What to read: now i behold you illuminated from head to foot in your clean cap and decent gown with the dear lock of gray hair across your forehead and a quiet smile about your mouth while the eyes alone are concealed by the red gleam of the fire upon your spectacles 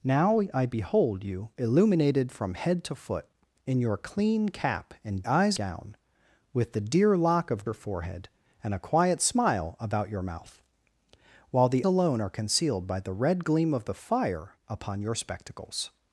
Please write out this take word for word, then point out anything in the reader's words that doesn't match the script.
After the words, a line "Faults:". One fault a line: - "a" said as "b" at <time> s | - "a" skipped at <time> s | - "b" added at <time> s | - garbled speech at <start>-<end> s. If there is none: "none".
now i behold you illuminated from head to foot in your clean cap and eyes gown with the dear lock of your forehead and a quiet smile about your mouth while the alone are concealed by the red gleam of the fire upon your spectacles
Faults:
- "decent" said as "eyes" at 5.2 s
- "gray hair across" skipped at 7.7 s
- "eyes" skipped at 11.9 s